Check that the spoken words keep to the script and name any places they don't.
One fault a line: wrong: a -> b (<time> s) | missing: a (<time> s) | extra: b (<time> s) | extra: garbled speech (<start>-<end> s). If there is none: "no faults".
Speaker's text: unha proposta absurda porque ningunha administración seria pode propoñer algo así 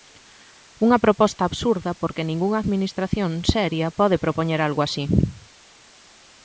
no faults